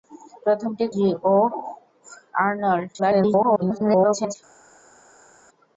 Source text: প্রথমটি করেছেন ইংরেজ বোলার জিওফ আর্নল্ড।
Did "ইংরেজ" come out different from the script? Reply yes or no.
yes